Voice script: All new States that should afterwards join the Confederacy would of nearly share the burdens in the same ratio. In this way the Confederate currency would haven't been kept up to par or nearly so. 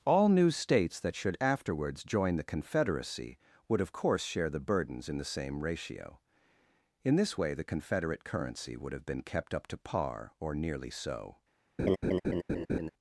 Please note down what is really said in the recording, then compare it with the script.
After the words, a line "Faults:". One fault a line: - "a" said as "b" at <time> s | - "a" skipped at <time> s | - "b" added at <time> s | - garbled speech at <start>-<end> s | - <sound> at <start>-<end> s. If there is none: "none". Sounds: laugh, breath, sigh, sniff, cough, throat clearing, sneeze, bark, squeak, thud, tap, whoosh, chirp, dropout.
All new States that should afterwards join the Confederacy would of course share the burdens in the same ratio. In this way the Confederate currency would have been kept up to par or nearly so.
Faults:
- "nearly" said as "course" at 3.9 s
- "haven't" said as "have" at 8.9 s
- laugh at 11.8-12.9 s